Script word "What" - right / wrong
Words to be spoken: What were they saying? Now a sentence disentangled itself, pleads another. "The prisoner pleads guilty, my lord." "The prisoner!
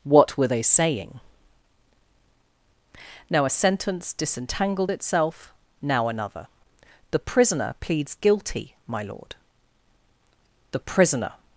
right